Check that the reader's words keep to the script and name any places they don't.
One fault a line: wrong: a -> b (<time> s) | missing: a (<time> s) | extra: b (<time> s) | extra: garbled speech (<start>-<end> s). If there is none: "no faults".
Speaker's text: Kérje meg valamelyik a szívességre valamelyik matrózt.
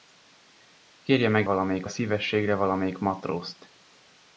no faults